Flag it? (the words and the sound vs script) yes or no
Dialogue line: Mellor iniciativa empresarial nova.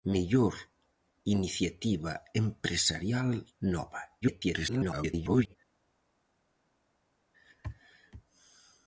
yes